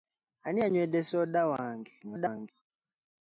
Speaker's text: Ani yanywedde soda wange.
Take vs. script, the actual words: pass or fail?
fail